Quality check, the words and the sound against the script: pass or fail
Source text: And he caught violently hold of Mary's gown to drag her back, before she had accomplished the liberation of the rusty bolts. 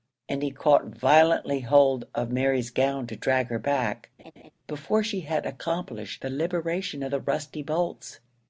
fail